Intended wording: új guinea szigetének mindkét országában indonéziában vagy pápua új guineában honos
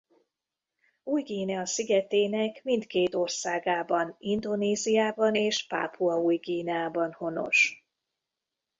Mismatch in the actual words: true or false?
true